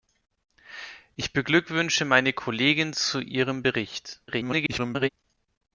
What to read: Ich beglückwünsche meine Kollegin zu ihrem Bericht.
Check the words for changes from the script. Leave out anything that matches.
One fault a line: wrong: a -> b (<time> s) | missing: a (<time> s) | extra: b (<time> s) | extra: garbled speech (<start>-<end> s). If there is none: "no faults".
extra: garbled speech (4.3-5.1 s)